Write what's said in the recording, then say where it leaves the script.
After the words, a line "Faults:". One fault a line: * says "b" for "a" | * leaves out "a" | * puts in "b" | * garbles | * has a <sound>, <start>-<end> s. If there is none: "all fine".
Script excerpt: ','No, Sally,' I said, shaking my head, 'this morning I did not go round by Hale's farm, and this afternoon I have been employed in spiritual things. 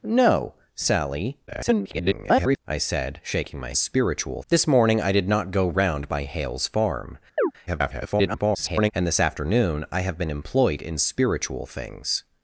','No, Sally,' [garbled] I said, shaking my spiritual, 'this morning I did not go round by Hale's farm, [garbled] and this afternoon I have been employed in spiritual things.
Faults:
* garbles
* says "spiritual" for "head"
* has a chirp, 7.4-7.5 s
* garbles